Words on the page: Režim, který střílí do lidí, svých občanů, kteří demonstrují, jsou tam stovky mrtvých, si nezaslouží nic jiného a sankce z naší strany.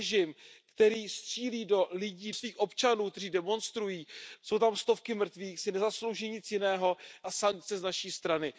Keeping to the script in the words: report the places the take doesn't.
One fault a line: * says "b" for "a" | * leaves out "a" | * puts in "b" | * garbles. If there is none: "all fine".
all fine